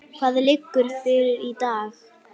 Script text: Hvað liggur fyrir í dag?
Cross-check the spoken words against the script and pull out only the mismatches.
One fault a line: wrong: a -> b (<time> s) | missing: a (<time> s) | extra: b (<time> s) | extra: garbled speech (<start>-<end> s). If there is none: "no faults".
no faults